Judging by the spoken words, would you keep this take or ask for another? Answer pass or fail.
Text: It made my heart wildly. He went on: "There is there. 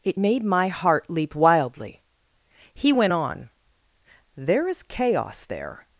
fail